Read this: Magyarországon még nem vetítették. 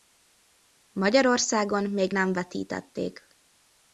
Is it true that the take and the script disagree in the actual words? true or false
false